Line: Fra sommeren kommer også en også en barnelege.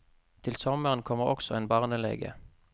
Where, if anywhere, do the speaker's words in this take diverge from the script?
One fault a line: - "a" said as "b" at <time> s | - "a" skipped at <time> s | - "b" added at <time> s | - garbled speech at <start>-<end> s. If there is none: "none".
- "Fra" said as "Til" at 0.4 s
- "også en" skipped at 1.7 s